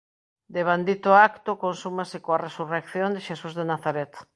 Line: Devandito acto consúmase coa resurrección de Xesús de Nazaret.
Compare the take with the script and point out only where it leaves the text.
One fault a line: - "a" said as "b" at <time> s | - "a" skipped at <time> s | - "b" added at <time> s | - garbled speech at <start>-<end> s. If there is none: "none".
none